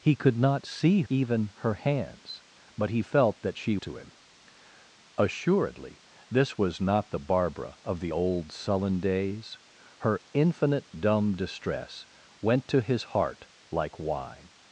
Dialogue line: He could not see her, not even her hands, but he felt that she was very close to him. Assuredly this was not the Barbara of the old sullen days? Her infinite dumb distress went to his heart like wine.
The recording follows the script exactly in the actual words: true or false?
false